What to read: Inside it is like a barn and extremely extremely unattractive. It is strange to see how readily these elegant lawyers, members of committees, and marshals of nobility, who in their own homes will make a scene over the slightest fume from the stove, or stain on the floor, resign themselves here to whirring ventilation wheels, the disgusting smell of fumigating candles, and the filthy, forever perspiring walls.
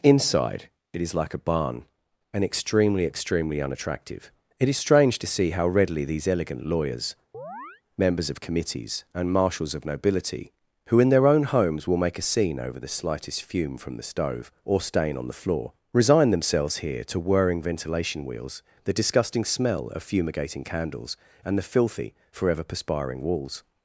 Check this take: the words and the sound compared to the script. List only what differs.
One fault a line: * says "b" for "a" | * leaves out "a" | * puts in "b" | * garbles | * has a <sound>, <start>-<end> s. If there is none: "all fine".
* has a chirp, 7.3-7.8 s